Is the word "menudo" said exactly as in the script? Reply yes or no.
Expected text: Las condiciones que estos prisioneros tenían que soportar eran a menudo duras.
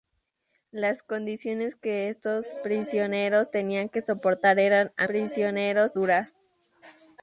no